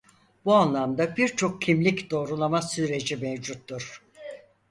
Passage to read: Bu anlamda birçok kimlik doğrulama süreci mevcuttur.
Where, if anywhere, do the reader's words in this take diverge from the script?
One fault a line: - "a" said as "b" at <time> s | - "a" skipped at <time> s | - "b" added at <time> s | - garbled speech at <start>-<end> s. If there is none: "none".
none